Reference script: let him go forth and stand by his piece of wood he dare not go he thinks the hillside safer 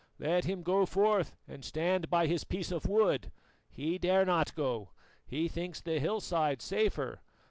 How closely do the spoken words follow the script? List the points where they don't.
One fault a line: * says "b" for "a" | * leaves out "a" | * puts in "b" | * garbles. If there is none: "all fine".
all fine